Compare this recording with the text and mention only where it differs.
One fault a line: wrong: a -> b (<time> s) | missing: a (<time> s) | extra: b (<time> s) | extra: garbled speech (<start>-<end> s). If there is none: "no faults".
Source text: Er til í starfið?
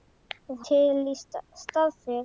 no faults